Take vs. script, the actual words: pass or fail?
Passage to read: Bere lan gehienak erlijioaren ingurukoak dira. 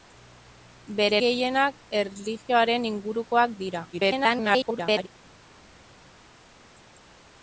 fail